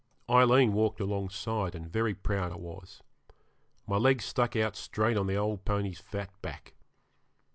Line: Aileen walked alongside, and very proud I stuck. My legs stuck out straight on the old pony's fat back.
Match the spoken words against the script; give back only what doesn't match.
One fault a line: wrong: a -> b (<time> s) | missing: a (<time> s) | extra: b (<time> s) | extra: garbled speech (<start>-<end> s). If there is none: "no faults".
wrong: stuck -> was (2.6 s)